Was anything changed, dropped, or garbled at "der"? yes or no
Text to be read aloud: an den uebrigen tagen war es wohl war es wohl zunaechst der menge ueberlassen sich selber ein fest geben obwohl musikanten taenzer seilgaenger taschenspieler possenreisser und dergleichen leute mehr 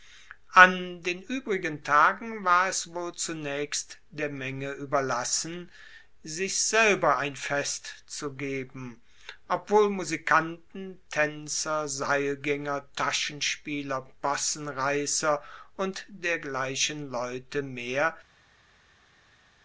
no